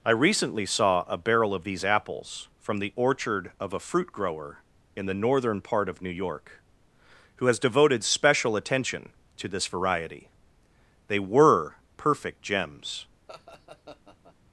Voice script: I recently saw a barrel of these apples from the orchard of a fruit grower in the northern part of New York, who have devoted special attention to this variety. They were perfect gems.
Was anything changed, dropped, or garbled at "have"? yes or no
yes